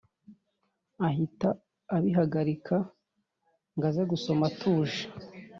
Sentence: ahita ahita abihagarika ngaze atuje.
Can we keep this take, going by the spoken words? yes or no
no